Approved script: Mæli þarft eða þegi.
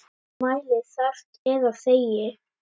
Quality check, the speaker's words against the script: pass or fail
pass